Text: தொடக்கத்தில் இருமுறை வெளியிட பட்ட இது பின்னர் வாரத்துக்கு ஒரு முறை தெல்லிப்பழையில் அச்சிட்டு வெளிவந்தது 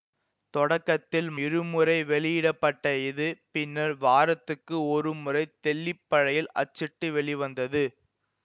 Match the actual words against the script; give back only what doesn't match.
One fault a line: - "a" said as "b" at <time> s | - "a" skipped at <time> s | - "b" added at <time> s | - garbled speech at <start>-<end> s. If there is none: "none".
none